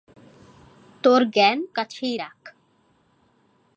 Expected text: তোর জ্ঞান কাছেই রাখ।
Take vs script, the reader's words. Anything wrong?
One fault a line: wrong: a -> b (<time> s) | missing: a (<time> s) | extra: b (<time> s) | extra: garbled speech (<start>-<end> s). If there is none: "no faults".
no faults